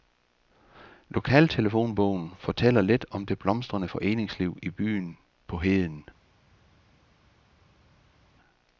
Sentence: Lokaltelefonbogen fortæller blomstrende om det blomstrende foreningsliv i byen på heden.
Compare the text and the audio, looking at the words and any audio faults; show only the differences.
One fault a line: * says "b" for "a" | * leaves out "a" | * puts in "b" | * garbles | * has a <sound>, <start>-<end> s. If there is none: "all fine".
* says "lidt" for "blomstrende"